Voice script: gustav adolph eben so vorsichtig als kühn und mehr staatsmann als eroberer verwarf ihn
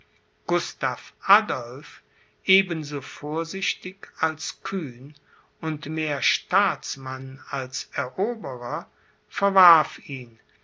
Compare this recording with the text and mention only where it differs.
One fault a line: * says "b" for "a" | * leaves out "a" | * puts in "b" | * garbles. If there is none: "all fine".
all fine